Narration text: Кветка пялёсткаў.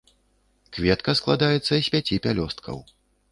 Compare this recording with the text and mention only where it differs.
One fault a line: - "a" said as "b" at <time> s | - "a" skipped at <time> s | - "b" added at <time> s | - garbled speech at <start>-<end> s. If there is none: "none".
- "складаецца з пяці" added at 1.2 s